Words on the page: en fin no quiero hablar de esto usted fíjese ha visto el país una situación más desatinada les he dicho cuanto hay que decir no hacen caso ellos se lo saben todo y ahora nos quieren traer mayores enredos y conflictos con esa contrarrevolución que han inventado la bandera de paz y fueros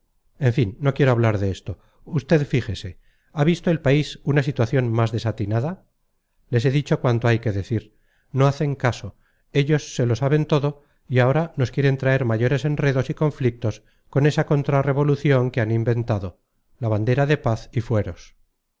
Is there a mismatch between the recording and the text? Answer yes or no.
no